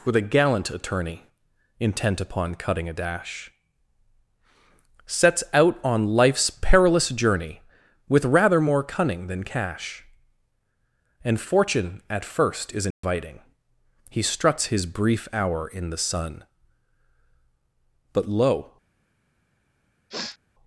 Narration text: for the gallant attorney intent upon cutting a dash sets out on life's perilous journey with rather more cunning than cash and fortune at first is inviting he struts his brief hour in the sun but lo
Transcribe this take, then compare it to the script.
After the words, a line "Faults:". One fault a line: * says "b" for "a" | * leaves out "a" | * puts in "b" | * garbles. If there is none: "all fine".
with a gallant attorney intent upon cutting a dash sets out on life's perilous journey with rather more cunning than cash and fortune at first is inviting he struts his brief hour in the sun but lo
Faults:
* says "with a" for "for the"